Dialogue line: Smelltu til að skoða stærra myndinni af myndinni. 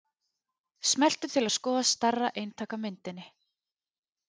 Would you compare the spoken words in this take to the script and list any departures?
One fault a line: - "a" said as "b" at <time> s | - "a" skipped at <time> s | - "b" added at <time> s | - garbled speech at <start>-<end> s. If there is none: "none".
- "myndinni" said as "eintak" at 2.4 s